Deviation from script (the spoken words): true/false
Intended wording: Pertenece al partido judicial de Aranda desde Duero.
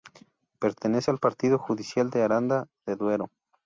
true